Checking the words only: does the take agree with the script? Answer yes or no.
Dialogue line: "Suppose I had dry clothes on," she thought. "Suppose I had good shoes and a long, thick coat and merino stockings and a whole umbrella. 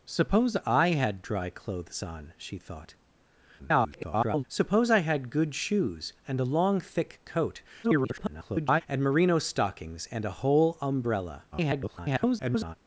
no